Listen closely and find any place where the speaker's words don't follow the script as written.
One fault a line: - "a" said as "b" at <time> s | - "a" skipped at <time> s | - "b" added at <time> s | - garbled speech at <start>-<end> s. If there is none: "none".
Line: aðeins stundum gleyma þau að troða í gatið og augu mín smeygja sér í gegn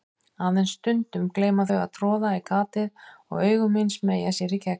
none